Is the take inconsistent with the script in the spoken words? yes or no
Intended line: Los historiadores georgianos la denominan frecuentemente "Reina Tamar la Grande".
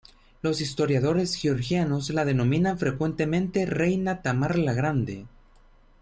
no